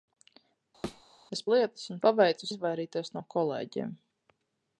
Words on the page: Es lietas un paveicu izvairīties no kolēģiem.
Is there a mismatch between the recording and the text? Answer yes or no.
no